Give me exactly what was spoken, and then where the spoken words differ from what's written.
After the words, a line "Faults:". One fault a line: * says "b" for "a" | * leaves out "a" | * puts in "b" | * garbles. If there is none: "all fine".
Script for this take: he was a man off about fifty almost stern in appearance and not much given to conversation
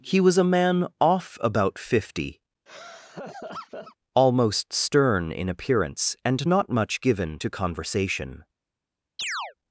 he was a man off about fifty almost stern in appearance and not much given to conversation
Faults:
all fine